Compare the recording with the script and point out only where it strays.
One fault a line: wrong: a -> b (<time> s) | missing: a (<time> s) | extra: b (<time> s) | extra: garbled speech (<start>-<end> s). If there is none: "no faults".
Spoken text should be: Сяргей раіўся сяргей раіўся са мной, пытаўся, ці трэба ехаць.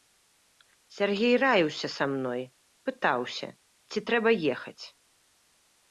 missing: сяргей раіўся (1.9 s)